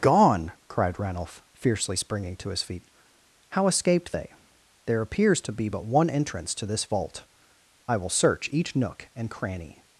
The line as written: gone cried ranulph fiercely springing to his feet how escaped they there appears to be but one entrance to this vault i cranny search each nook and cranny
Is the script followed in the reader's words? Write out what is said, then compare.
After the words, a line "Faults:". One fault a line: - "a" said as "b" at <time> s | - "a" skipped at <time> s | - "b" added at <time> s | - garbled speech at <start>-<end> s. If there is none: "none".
gone cried ranulph fiercely springing to his feet how escaped they there appears to be but one entrance to this vault i will search each nook and cranny
Faults:
- "cranny" said as "will" at 8.0 s